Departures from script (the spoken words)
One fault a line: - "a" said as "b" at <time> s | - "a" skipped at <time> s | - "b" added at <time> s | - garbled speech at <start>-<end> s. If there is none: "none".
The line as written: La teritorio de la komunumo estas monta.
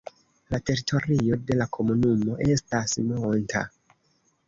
none